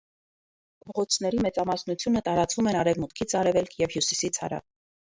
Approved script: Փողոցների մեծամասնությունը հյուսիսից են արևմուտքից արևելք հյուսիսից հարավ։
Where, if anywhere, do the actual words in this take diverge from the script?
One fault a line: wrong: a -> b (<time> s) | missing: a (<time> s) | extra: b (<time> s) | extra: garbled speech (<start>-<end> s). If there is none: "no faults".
wrong: հյուսիսից -> տարածվում (2.3 s)
extra: և (3.9 s)